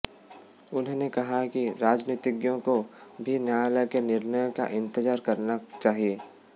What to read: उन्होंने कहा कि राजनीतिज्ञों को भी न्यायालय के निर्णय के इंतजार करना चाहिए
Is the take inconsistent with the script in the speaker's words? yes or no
yes